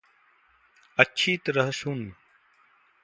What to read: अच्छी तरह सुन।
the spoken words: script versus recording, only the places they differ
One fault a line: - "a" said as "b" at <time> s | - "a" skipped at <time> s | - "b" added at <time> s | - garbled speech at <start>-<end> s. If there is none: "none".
none